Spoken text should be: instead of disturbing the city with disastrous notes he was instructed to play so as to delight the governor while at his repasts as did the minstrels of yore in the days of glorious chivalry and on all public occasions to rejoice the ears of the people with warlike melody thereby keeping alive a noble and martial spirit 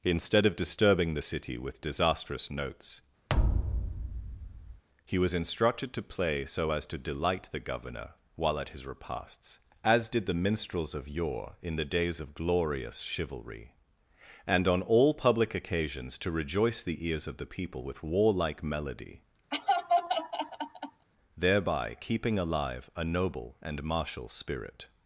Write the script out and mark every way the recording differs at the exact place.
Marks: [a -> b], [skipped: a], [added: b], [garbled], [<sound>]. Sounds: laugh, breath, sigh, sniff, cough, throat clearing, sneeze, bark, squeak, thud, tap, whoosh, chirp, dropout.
instead of disturbing the city with disastrous notes [thud] he was instructed to play so as to delight the governor while at his repasts as did the minstrels of yore in the days of glorious chivalry and on all public occasions to rejoice the ears of the people with warlike melody [laugh] thereby keeping alive a noble and martial spirit